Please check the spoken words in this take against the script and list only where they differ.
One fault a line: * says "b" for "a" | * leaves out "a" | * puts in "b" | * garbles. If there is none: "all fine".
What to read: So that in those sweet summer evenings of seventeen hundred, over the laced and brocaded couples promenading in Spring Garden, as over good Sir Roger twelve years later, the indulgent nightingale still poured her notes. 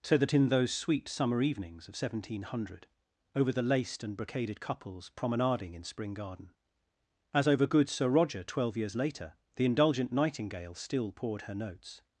all fine